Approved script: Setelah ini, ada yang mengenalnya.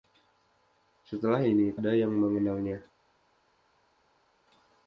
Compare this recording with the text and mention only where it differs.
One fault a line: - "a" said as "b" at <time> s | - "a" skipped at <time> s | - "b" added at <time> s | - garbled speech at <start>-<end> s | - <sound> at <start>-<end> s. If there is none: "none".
none